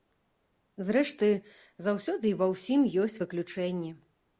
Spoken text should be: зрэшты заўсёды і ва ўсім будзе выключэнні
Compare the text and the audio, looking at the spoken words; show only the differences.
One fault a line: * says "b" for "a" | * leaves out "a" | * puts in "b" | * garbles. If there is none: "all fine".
* says "ёсць" for "будзе"